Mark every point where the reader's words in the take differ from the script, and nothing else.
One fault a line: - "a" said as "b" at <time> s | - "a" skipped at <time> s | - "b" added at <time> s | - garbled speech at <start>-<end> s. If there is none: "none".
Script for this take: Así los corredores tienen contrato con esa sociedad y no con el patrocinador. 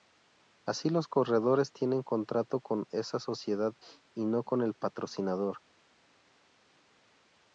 none